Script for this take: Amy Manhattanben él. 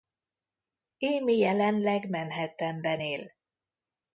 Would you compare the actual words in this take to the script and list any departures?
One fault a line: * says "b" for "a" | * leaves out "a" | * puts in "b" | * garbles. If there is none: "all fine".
* puts in "jelenleg"